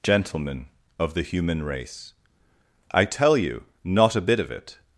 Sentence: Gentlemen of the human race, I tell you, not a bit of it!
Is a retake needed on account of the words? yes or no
no